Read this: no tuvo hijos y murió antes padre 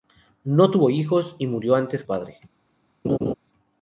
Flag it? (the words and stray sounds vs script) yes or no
yes